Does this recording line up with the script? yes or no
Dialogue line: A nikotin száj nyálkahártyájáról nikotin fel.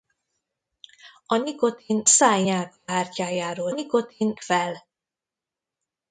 yes